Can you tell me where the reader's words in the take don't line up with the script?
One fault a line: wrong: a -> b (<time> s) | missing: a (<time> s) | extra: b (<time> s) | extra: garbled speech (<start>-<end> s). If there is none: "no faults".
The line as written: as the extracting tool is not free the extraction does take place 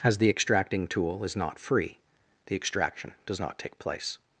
extra: not (3.4 s)